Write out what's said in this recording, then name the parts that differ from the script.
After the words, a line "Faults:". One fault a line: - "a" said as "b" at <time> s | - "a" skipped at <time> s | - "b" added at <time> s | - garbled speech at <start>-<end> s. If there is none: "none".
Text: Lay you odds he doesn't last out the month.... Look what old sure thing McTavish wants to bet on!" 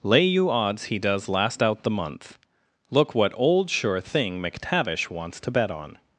Lay you odds he does last out the month.... Look what old sure thing McTavish wants to bet on!"
Faults:
- "doesn't" said as "does" at 1.0 s